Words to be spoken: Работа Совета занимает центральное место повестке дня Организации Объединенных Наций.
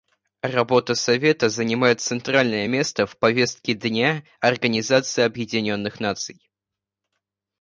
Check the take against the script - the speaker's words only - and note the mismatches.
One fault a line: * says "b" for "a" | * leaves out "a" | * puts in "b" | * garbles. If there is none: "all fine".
* puts in "в"